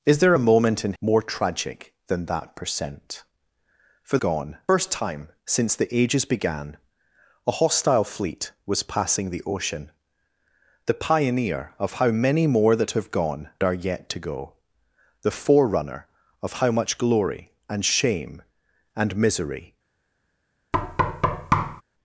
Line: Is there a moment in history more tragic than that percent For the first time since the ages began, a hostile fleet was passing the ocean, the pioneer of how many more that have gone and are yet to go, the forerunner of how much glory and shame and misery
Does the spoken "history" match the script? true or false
false